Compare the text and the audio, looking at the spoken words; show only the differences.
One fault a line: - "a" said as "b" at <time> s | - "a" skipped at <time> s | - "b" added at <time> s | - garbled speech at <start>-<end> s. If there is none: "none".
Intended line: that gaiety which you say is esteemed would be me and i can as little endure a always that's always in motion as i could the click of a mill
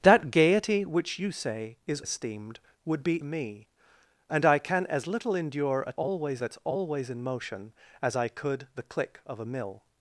none